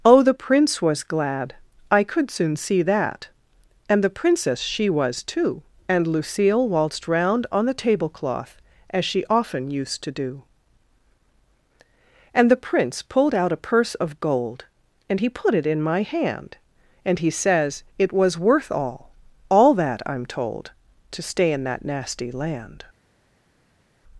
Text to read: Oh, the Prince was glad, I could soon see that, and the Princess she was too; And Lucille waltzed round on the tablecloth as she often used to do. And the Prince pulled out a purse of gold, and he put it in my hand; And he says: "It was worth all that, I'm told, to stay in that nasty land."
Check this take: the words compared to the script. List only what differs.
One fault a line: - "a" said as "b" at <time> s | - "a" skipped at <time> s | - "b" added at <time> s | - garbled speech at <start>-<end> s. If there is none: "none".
- "all" added at 19.5 s